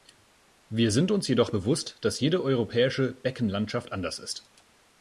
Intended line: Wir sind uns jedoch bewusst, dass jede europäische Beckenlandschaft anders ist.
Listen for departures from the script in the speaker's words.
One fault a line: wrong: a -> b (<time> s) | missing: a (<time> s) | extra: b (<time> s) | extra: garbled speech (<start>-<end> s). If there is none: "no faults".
no faults